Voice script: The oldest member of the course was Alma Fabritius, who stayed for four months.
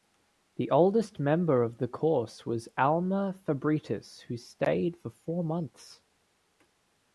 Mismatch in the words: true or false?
false